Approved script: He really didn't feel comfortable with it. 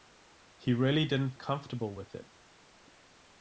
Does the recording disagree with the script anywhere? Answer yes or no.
yes